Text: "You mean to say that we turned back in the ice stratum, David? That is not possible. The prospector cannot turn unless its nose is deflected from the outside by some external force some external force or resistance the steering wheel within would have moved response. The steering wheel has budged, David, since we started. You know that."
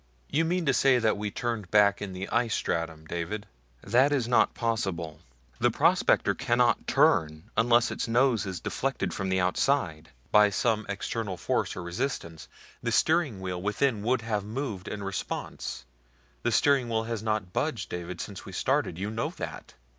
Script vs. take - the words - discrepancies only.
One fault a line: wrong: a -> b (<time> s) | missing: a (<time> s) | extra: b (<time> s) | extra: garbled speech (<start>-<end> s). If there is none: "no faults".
missing: some external force (11.8 s)
extra: in (14.9 s)
extra: not (17.2 s)